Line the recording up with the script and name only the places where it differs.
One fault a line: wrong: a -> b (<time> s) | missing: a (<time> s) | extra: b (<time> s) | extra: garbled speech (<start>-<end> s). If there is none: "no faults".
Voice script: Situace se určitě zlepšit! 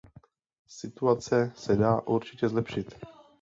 extra: dá (1.8 s)